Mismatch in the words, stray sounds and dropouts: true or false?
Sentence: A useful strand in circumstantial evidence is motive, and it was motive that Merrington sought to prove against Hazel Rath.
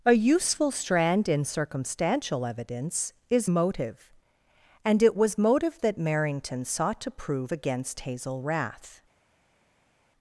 false